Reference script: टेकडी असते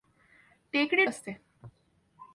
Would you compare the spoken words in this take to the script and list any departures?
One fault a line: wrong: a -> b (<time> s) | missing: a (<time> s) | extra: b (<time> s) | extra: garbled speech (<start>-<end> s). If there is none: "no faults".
no faults